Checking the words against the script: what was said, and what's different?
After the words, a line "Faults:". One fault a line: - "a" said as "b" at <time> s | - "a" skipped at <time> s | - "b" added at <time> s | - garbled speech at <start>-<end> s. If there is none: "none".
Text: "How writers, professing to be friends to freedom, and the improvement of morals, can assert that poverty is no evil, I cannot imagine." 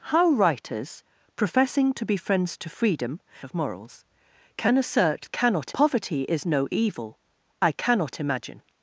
"How writers, professing to be friends to freedom, of morals, can assert cannot poverty is no evil, I cannot imagine."
Faults:
- "and the improvement" skipped at 3.2 s
- "that" said as "cannot" at 5.3 s